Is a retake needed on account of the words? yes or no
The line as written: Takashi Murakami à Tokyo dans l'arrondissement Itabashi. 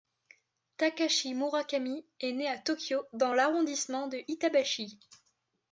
yes